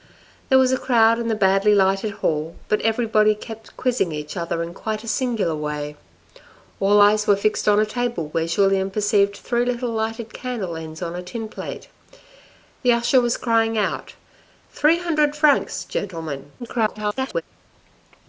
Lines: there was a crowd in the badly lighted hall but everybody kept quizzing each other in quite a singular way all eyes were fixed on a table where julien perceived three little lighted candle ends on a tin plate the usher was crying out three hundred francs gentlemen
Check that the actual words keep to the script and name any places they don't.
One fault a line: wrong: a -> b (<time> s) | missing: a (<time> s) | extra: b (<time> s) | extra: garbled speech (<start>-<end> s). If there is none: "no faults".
extra: garbled speech (16.6-17.4 s)